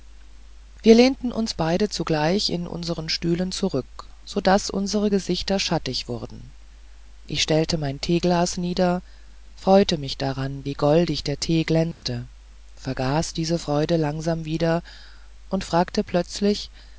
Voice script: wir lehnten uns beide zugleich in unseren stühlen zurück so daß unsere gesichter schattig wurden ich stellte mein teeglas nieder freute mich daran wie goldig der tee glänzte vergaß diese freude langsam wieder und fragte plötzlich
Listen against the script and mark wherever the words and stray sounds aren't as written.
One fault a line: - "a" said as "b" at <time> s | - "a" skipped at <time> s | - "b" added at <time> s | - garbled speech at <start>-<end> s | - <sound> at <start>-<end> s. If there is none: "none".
- dropout at 11.9-12.0 s